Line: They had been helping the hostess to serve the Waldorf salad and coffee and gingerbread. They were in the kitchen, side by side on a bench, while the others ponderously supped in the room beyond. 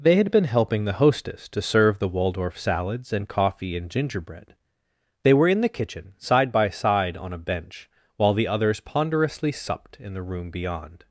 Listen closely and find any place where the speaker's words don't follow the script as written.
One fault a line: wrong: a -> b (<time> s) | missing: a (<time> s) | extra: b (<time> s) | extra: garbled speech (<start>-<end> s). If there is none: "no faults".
wrong: salad -> salads (2.6 s)